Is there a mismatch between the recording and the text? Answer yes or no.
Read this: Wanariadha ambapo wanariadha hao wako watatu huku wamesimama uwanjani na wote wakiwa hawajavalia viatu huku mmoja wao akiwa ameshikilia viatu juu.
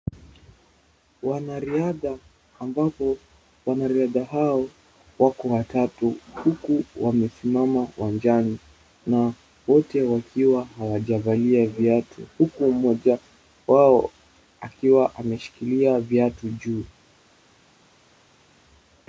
no